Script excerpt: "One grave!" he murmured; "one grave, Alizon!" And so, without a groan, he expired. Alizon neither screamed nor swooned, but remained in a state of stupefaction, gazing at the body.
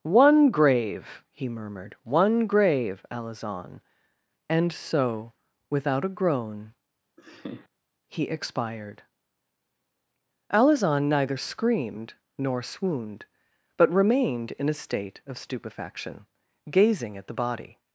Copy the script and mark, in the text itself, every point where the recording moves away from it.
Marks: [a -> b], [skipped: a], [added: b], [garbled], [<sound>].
"One grave!" he murmured; "one grave, Alizon!" And so, without a groan, [laugh] he expired. Alizon neither screamed nor swooned, but remained in a state of stupefaction, gazing at the body.